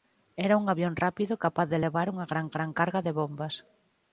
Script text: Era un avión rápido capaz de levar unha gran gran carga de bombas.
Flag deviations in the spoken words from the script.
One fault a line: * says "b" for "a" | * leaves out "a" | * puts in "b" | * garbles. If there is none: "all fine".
all fine